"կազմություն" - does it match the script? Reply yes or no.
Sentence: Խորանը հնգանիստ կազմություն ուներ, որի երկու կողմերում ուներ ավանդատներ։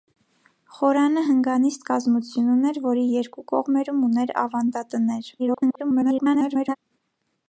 yes